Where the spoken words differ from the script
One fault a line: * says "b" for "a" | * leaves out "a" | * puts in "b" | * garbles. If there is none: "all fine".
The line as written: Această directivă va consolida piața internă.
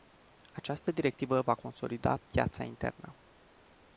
all fine